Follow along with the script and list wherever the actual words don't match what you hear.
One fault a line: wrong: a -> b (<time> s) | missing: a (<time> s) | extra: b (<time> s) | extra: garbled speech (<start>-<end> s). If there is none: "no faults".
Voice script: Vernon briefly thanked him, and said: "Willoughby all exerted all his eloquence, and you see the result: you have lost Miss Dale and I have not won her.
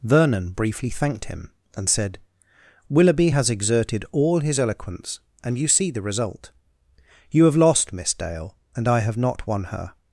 wrong: all -> has (3.3 s)